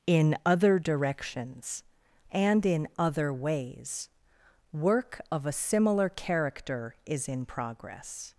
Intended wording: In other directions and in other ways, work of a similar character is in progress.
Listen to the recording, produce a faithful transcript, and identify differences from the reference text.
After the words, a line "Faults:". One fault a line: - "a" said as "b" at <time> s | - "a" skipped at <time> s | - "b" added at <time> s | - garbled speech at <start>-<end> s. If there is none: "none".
In other directions and in other ways, work of a similar character is in progress.
Faults:
none